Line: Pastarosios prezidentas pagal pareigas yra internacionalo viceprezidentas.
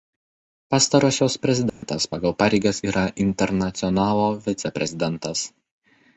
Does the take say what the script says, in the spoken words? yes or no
yes